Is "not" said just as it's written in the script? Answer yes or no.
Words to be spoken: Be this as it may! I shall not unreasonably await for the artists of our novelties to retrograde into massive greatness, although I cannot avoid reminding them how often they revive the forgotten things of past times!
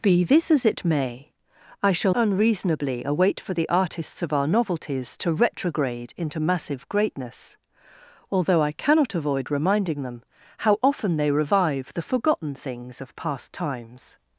no